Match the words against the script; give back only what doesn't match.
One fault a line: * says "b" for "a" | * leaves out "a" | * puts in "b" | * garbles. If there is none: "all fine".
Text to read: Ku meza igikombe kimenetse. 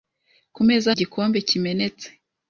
all fine